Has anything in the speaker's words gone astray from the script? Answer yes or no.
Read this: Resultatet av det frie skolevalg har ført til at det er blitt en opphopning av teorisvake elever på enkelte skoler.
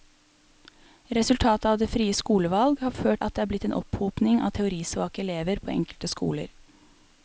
yes